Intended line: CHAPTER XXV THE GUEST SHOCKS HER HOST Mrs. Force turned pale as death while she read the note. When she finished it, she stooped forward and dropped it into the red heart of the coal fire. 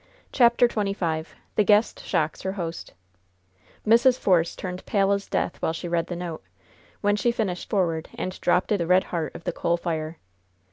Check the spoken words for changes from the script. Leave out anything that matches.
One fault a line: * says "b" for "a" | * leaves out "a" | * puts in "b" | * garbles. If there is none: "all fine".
* leaves out "it she stooped"
* leaves out "into"